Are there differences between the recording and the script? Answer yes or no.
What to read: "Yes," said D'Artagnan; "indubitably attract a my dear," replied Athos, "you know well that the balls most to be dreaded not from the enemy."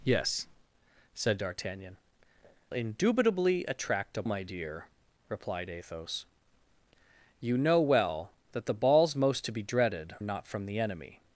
no